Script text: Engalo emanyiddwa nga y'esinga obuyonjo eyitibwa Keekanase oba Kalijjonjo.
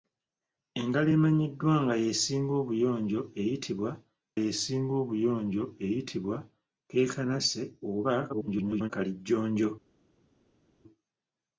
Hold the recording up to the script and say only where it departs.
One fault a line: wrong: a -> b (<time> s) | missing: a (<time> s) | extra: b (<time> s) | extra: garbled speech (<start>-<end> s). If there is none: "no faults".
extra: y'esinga obuyonjo eyitibwa (4.4 s)
extra: garbled speech (8.3-8.9 s)